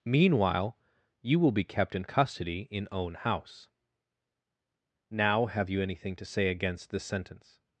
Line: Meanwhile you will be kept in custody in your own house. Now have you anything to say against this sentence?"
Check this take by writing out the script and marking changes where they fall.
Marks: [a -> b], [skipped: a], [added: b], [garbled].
Meanwhile you will be kept in custody in [skipped: your] own house. Now have you anything to say against this sentence?"